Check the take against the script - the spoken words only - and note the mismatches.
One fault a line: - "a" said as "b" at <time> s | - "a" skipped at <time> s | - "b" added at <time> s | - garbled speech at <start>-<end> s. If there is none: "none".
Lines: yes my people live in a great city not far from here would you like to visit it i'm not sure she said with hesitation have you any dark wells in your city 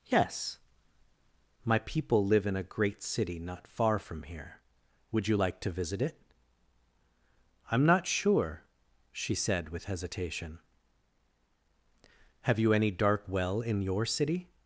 - "wells" said as "well" at 13.3 s